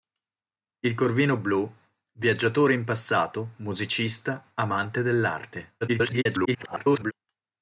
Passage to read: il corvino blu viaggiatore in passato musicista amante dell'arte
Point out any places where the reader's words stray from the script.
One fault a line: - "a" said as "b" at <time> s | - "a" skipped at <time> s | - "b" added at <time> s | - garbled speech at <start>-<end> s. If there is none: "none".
- garbled speech at 5.8-7.1 s